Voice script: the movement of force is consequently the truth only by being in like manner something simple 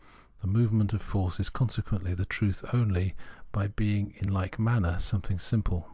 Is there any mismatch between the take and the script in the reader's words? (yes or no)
no